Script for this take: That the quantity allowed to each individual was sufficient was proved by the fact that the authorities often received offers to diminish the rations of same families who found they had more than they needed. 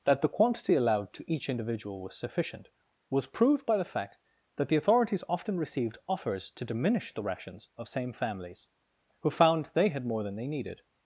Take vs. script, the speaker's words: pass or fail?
pass